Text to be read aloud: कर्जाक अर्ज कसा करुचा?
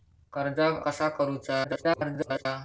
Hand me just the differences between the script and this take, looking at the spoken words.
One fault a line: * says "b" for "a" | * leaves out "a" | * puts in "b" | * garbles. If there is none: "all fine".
* leaves out "अर्ज"
* garbles